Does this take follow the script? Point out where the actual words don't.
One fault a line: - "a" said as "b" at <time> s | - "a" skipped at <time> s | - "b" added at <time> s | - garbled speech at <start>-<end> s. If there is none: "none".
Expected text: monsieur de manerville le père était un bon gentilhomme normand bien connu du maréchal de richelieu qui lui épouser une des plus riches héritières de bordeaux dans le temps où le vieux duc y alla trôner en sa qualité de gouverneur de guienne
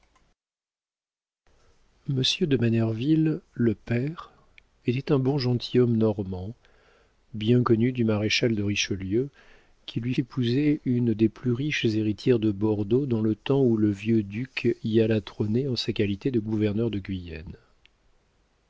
none